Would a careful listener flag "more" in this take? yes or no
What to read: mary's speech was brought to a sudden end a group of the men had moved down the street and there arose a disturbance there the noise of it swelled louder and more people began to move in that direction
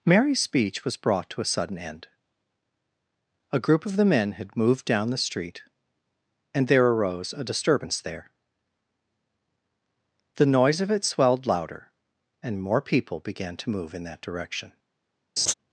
no